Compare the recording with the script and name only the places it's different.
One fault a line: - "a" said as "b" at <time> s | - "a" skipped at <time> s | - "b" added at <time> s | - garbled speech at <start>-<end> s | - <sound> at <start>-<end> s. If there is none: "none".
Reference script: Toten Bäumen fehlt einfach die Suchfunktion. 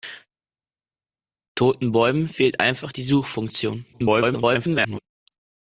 - garbled speech at 3.9-5.0 s